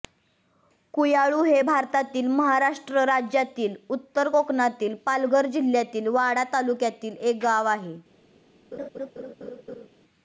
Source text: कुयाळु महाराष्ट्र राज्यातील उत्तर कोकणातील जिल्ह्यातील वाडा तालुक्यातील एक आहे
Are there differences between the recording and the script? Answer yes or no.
yes